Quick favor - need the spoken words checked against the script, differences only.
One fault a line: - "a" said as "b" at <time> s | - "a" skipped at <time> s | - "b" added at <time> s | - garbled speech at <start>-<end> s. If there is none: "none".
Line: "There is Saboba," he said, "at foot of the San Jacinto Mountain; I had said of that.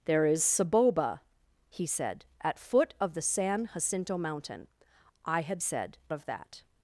none